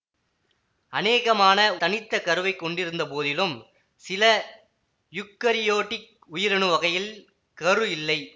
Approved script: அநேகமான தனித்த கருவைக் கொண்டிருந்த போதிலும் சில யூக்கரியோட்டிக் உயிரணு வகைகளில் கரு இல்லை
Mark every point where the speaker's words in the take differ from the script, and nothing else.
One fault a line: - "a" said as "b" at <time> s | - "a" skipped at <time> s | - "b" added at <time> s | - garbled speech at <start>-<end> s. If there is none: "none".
none